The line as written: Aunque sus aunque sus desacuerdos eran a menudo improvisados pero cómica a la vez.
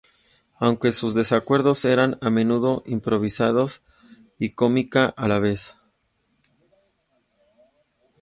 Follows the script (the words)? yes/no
no